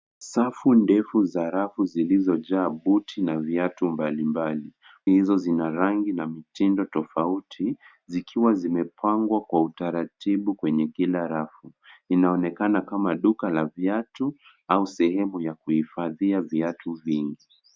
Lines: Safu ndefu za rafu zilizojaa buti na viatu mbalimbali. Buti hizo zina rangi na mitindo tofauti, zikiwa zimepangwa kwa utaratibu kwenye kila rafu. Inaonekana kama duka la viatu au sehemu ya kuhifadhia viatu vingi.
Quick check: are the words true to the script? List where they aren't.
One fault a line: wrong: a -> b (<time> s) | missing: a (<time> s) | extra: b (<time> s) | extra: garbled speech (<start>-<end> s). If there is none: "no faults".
missing: Buti (4.7 s)